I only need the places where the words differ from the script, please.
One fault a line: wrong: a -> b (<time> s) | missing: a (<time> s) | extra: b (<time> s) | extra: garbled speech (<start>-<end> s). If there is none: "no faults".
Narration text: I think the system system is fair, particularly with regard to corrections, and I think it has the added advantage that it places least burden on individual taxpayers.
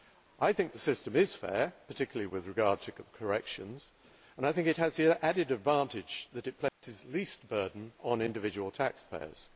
missing: system (1.1 s)